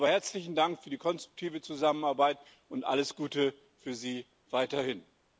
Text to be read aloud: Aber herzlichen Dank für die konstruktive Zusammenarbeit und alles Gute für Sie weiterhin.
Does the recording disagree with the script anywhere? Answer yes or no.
no